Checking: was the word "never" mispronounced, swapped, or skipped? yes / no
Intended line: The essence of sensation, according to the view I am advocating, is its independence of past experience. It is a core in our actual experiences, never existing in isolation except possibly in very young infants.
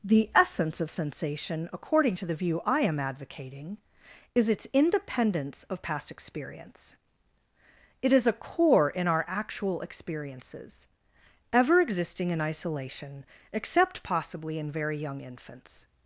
yes